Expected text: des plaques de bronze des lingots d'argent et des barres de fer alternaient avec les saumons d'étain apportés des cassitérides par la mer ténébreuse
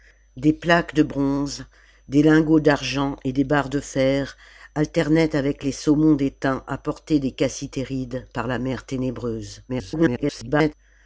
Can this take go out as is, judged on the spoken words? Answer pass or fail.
fail